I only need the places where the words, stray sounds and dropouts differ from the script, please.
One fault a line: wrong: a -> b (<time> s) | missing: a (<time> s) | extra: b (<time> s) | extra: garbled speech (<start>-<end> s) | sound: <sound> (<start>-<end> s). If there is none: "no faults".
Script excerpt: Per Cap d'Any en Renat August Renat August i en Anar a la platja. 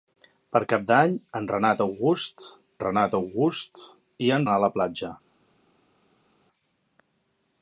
no faults